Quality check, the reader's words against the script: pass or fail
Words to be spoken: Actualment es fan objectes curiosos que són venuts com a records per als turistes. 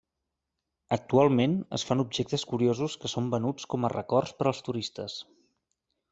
pass